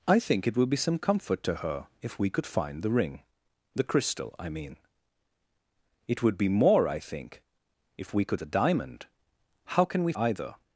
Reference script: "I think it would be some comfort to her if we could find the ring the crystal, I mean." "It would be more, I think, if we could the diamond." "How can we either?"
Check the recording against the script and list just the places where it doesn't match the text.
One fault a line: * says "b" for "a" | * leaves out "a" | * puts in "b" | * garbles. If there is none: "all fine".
all fine